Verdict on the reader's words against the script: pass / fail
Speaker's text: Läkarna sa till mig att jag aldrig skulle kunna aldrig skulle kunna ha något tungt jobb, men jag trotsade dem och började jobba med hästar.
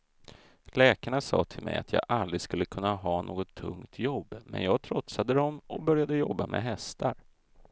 fail